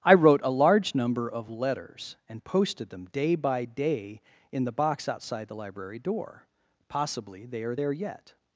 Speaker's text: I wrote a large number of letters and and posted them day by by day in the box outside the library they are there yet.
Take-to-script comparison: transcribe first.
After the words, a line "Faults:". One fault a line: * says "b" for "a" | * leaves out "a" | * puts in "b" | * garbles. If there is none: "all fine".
I wrote a large number of letters and posted them day by day in the box outside the library door: possibly they are there yet.
Faults:
* leaves out "and"
* leaves out "by"
* puts in "door possibly"